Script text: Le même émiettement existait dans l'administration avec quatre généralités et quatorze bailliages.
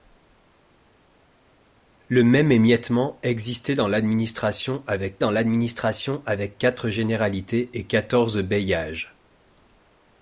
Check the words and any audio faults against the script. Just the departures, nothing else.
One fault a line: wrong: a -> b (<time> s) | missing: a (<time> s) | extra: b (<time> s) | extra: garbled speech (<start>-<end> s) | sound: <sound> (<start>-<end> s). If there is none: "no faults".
extra: dans l'administration avec (5.2 s)